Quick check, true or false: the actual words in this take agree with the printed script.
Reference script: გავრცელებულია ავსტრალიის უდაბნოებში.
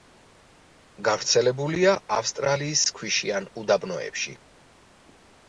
false